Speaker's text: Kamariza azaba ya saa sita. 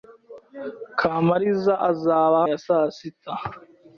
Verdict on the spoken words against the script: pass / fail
pass